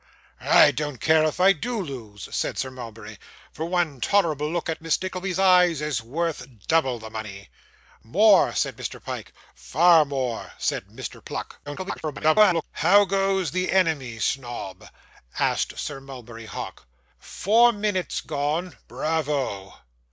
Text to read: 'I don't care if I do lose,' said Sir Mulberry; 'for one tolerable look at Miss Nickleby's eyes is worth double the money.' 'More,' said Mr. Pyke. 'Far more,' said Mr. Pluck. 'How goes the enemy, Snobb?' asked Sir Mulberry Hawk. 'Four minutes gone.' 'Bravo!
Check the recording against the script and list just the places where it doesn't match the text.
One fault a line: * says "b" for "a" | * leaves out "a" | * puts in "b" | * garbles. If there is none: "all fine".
* garbles